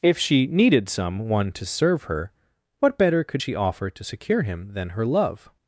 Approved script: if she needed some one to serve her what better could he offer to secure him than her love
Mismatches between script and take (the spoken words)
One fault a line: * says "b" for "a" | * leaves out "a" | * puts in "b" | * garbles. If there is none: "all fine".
* says "she" for "he"